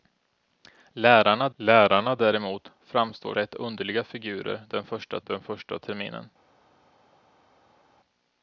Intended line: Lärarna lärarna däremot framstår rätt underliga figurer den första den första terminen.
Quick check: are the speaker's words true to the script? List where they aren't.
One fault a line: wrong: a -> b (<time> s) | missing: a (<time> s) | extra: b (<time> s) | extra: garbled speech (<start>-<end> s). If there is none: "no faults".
no faults